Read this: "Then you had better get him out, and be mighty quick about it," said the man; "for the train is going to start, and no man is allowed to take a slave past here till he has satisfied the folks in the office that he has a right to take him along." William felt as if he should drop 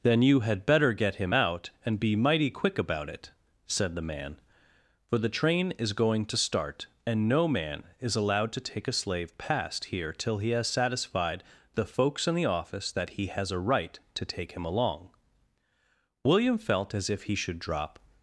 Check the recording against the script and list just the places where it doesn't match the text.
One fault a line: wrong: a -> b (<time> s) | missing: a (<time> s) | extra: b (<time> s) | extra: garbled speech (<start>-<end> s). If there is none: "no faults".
no faults